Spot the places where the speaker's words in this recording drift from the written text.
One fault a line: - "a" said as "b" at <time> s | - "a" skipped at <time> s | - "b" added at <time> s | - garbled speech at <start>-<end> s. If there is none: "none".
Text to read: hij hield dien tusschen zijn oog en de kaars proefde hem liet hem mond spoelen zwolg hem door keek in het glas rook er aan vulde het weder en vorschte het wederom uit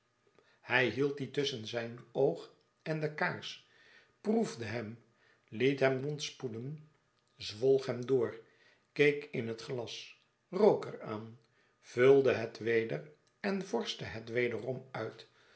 none